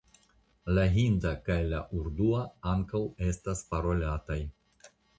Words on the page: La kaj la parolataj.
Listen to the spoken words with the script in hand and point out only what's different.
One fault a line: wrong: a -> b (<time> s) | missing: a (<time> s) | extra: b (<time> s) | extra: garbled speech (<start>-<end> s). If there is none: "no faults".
extra: hinda (0.9 s)
extra: urdua ankaŭ estas (2.0 s)